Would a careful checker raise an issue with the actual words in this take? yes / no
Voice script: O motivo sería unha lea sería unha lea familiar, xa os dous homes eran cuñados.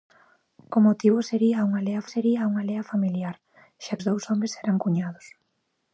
no